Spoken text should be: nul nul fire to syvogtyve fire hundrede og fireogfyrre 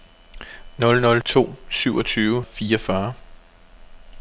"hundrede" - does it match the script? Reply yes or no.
no